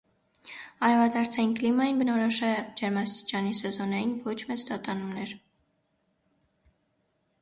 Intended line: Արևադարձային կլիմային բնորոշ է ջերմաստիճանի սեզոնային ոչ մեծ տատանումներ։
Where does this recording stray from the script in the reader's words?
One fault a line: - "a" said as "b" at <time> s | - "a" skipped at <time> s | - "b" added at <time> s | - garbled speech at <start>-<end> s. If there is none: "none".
none